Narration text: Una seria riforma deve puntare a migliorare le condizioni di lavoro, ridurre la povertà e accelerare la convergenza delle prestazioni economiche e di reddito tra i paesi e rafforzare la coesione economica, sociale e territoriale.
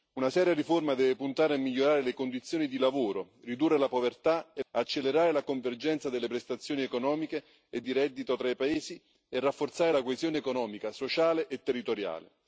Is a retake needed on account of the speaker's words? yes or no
no